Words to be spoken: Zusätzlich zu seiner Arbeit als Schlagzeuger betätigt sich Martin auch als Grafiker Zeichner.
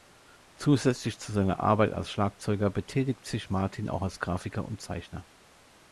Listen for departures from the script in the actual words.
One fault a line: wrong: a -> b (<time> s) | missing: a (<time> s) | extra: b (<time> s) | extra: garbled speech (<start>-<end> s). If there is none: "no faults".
extra: und (4.7 s)